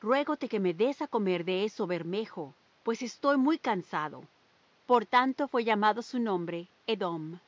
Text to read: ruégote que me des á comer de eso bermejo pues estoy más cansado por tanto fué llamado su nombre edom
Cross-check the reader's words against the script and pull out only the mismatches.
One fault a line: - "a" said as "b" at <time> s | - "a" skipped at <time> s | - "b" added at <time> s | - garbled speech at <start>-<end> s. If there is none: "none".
- "más" said as "muy" at 3.4 s